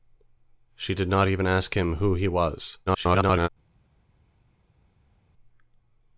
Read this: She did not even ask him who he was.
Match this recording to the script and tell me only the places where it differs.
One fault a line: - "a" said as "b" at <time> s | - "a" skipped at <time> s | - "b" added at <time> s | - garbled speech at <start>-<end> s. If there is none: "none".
- garbled speech at 2.9-3.5 s